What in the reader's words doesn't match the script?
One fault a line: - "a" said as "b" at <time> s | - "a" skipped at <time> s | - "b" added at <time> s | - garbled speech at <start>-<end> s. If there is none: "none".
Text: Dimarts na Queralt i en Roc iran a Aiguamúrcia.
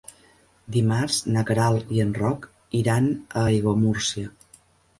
none